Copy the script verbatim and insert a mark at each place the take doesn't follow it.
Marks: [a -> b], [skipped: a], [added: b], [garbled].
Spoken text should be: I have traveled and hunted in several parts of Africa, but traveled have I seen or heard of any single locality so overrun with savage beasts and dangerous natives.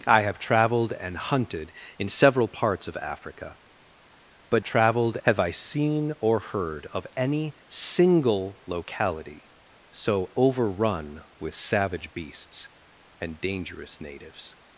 I have traveled and hunted in several parts of Africa, but traveled have I seen or heard of any single locality so overrun with savage beasts and dangerous natives.